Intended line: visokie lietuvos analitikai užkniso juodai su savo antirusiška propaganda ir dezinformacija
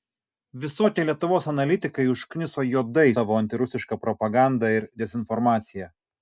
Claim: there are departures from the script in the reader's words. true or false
true